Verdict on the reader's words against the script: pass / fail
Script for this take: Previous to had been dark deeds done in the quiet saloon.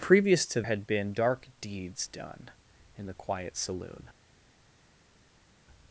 pass